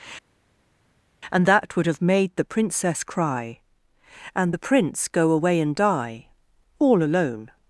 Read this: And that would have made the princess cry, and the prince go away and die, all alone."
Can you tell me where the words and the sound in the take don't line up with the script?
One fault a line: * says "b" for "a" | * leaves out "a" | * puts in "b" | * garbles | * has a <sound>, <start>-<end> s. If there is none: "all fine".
all fine